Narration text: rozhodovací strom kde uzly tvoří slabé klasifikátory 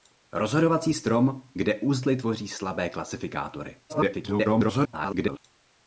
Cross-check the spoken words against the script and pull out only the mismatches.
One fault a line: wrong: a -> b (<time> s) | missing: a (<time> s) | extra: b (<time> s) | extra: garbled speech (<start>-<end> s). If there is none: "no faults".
extra: garbled speech (3.9-5.4 s)